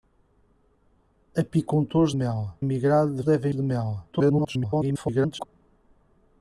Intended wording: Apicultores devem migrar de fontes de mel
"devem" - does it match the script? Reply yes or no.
no